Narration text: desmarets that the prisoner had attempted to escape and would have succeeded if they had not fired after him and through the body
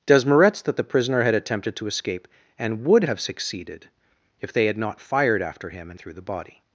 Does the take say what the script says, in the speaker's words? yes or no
yes